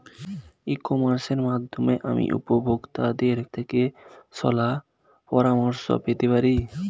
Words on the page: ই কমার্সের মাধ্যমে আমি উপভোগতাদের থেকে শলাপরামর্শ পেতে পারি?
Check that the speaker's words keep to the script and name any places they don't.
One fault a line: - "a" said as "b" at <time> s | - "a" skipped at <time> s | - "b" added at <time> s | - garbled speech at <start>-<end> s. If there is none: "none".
none